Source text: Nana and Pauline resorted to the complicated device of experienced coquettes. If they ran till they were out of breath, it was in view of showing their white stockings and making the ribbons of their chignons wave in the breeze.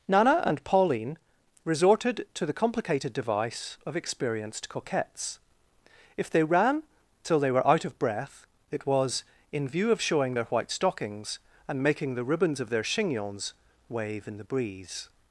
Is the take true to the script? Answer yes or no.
yes